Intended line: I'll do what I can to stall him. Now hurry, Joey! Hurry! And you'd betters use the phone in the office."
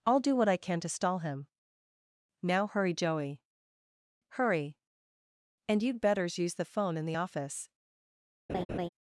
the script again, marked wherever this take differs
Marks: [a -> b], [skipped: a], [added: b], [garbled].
I'll do what I can to stall him. Now hurry, Joey! Hurry! And you'd betters use the phone in the office."